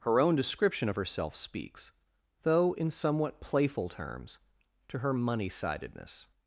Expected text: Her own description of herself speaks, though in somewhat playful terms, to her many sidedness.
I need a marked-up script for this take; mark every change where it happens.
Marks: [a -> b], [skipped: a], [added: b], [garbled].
Her own description of herself speaks, though in somewhat playful terms, to her [many -> money] sidedness.